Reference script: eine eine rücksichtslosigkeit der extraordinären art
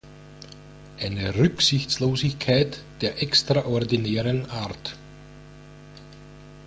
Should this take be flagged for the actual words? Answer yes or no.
yes